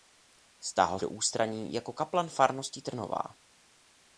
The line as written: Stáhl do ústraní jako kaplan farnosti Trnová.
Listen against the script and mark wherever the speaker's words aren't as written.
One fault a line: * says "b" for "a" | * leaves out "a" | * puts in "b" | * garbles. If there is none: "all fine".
all fine